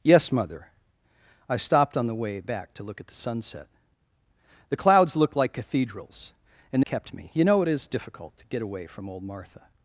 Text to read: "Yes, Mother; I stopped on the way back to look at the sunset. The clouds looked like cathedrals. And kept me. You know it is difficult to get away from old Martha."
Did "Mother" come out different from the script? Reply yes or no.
no